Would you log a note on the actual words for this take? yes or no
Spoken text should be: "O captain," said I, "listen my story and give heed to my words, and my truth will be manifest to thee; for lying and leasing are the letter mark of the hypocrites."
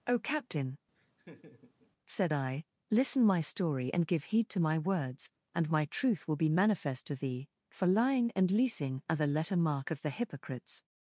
no